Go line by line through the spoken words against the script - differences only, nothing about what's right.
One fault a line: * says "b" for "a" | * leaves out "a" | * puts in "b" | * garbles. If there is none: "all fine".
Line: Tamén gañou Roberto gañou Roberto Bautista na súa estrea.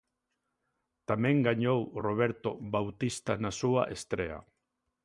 * leaves out "gañou Roberto"